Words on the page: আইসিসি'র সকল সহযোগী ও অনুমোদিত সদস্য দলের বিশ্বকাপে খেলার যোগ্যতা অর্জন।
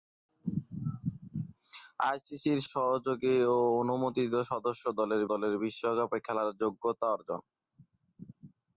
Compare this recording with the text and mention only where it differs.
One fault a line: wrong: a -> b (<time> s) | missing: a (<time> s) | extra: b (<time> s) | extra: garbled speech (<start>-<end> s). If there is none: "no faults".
missing: সকল (2.6 s)
extra: দলের (5.3 s)